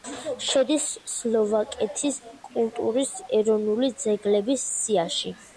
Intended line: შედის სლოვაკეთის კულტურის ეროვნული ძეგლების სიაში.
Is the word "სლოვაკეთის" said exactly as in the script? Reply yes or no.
yes